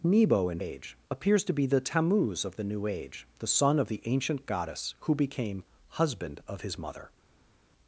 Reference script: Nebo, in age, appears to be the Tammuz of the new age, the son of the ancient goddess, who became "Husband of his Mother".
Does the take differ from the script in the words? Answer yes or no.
no